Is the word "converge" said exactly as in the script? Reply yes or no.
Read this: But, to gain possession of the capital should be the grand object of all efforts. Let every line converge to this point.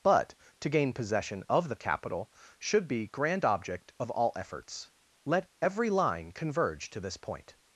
yes